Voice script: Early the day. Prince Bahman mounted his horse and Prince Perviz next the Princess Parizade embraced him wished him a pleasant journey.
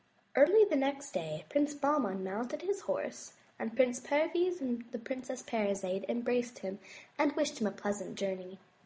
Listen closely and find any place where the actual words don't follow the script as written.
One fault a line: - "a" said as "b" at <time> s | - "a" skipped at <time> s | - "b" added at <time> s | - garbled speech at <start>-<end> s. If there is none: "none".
- "next" added at 0.8 s
- "next" said as "and" at 4.6 s
- "and" added at 7.2 s